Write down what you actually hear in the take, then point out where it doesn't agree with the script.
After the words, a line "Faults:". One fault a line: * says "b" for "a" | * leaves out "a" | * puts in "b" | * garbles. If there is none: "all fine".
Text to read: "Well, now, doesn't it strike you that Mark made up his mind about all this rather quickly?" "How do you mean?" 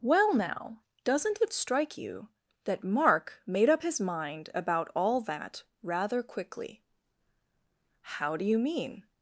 "Well, now, doesn't it strike you that Mark made up his mind about all that rather quickly?" "How do you mean?"
Faults:
* says "that" for "this"